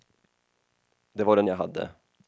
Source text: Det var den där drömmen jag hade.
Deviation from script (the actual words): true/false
true